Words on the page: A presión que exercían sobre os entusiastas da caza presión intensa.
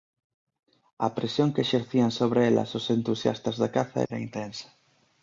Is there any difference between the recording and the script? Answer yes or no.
yes